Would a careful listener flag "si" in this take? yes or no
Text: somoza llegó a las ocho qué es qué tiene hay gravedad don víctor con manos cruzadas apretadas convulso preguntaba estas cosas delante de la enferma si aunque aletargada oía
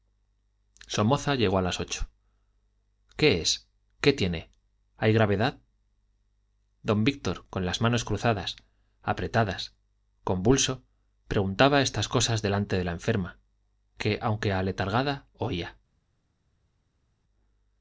yes